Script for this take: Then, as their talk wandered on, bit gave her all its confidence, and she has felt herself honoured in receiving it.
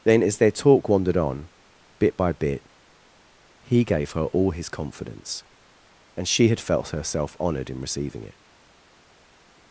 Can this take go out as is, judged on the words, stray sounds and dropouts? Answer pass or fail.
fail